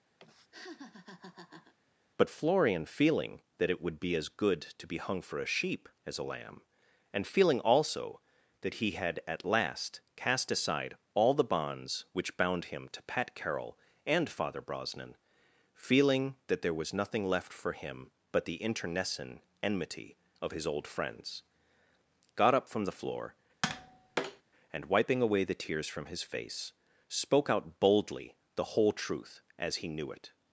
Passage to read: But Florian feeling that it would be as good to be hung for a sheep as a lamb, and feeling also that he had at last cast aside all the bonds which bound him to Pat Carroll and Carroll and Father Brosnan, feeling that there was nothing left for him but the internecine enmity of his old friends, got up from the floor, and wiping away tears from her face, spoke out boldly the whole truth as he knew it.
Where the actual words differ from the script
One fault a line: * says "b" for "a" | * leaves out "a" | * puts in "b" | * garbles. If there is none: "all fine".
* leaves out "Carroll and"
* puts in "the"
* says "his" for "her"